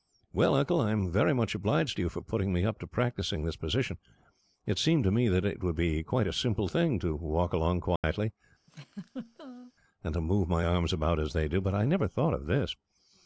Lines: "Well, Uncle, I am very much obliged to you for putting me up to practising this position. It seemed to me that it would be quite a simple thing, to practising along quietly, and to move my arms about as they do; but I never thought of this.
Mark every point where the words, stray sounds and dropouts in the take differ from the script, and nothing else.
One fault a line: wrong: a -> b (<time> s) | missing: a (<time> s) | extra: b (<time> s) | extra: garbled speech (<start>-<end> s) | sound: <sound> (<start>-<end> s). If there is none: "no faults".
wrong: practising -> walk (7.2 s)
sound: dropout (8.0-8.0 s)
sound: laugh (8.7-9.7 s)